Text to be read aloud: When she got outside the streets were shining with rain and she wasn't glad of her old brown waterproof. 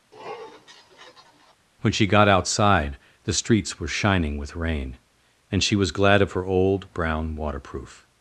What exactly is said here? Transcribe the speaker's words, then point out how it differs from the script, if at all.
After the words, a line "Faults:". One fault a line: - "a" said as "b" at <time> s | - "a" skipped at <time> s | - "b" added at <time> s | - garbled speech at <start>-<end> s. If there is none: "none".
When she got outside the streets were shining with rain and she was glad of her old brown waterproof.
Faults:
- "wasn't" said as "was" at 5.7 s